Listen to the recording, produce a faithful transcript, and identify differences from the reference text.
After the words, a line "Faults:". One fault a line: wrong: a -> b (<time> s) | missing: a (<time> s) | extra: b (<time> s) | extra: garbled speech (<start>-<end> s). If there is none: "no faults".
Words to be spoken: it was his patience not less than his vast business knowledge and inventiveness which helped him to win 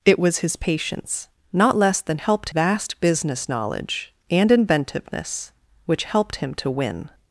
it was his patience not less than helped vast business knowledge and inventiveness which helped him to win
Faults:
wrong: his -> helped (2.2 s)